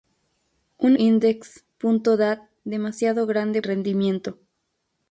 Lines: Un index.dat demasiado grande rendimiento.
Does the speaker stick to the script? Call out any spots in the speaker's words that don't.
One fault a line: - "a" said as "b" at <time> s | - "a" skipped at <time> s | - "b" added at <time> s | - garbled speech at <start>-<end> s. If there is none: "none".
none